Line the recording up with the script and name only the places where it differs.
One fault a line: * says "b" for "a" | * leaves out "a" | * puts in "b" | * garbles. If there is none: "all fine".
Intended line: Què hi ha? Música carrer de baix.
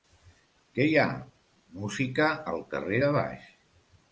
* puts in "al"